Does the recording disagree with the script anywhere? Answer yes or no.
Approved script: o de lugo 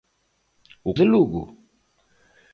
no